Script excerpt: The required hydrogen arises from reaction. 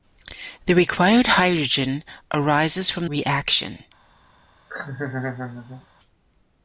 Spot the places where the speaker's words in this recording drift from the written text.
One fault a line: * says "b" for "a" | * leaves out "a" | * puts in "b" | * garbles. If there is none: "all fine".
all fine